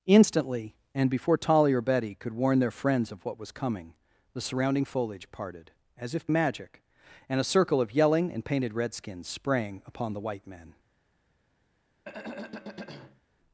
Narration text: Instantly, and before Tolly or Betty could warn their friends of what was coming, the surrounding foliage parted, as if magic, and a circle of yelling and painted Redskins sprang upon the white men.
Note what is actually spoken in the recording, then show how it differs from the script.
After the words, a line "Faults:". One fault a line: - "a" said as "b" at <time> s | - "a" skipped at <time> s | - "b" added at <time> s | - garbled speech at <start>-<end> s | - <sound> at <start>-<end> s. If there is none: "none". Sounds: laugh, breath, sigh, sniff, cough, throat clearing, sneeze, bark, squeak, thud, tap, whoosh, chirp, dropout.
Instantly, and before Tolly or Betty could warn their friends of what was coming, the surrounding foliage parted, as if magic, and a circle of yelling and painted Redskins sprang upon the white men.
Faults:
- throat clearing at 12.0-13.2 s